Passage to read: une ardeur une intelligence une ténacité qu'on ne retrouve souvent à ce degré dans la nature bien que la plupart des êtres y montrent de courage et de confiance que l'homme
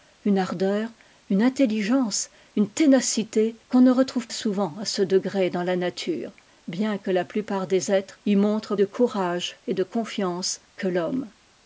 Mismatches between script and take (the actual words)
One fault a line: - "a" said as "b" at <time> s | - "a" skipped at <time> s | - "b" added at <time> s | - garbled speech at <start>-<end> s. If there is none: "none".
none